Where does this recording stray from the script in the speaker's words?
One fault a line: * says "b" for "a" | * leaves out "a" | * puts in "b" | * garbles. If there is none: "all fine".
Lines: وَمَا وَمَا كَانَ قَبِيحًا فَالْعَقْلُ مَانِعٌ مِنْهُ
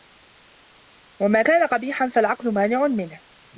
* leaves out "وَمَا"